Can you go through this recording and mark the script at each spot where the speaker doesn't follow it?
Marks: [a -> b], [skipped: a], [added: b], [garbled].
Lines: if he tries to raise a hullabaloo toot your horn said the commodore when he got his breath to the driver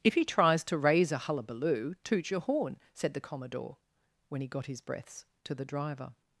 if he tries to raise a hullabaloo toot your horn said the commodore when he got his [breath -> breaths] to the driver